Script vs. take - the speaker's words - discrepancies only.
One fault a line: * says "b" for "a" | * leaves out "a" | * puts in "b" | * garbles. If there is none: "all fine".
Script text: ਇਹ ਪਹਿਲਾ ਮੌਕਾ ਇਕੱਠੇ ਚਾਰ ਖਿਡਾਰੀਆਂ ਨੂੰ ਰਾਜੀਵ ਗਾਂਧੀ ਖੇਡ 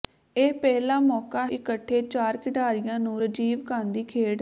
all fine